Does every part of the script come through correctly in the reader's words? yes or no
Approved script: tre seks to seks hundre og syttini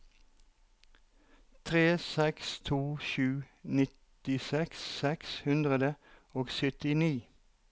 no